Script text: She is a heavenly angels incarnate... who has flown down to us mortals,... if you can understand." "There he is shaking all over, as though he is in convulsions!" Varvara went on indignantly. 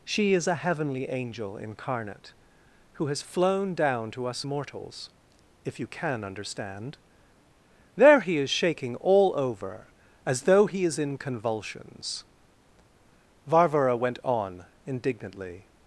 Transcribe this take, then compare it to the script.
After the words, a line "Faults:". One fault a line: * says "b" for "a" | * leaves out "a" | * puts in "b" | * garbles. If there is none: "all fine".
She is a heavenly angel incarnate... who has flown down to us mortals,... if you can understand." "There he is shaking all over, as though he is in convulsions!" Varvara went on indignantly.
Faults:
* says "angel" for "angels"